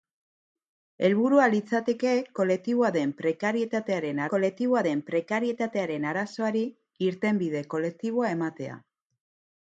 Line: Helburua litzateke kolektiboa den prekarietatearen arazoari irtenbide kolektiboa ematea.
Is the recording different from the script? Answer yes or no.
yes